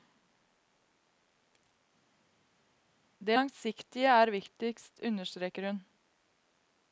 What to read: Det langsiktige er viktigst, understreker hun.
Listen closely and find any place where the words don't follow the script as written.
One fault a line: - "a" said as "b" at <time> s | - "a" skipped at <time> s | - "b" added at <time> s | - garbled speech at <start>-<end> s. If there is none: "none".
none